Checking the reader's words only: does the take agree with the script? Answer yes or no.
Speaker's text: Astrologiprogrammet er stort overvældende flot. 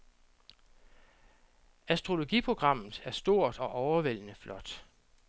no